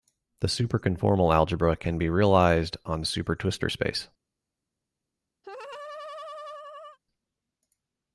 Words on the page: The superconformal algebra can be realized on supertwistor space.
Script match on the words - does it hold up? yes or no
yes